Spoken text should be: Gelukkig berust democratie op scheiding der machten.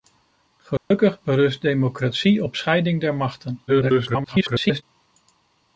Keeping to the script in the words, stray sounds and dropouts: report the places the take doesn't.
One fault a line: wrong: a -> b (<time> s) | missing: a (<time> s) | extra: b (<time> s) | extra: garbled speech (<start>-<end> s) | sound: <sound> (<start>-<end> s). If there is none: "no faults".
sound: dropout (0.8-0.9 s)
extra: garbled speech (3.7-4.8 s)